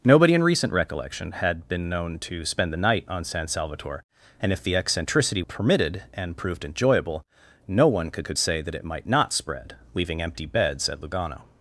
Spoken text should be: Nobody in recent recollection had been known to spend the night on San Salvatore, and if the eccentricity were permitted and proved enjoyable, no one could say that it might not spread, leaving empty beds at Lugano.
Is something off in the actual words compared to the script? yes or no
yes